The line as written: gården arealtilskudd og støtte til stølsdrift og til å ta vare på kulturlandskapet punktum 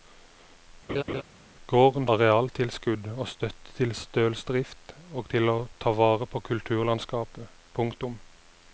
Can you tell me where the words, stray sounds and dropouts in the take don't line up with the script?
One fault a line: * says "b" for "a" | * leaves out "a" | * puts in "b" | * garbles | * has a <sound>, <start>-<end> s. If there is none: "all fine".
* has a laugh, 0.9-1.2 s